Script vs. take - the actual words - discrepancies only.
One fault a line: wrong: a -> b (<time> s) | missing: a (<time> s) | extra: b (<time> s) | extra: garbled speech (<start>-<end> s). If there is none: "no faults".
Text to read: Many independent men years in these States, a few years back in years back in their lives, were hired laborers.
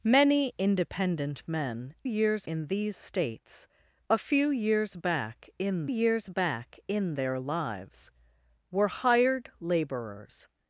no faults